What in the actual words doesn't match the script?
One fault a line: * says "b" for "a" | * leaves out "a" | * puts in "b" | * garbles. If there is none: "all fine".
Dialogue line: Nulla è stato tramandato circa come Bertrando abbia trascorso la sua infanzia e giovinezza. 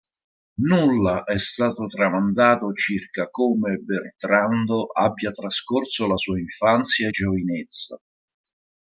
all fine